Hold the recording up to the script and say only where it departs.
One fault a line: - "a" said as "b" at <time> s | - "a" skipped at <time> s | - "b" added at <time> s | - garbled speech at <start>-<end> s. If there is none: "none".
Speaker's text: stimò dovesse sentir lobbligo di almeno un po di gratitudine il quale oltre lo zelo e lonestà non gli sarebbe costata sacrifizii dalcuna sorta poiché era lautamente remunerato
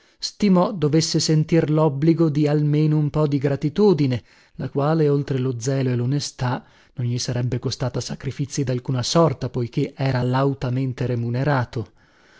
- "il" said as "la" at 4.5 s